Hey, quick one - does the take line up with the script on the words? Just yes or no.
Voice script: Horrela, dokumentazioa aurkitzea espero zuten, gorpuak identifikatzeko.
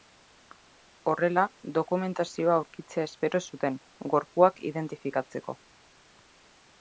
yes